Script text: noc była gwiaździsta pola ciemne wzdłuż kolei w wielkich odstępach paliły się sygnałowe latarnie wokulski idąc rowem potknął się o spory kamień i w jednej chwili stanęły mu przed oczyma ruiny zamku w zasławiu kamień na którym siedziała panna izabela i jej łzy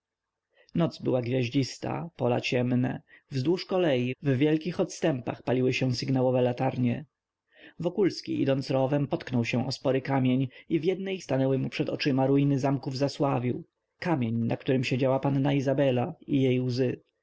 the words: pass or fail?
fail